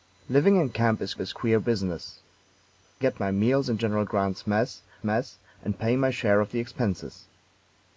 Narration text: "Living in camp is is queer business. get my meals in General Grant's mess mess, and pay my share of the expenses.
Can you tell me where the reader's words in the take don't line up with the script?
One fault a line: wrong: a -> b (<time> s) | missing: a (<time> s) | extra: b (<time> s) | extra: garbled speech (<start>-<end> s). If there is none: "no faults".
no faults